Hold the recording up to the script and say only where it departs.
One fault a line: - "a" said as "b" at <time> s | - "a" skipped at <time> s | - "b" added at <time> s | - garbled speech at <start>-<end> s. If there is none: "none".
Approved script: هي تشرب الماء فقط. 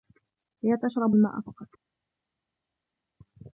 none